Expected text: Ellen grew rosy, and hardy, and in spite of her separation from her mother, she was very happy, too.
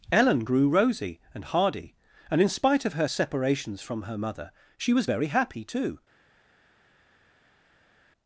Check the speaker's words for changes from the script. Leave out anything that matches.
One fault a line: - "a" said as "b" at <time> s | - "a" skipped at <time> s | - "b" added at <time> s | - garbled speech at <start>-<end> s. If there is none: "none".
- "separation" said as "separations" at 3.1 s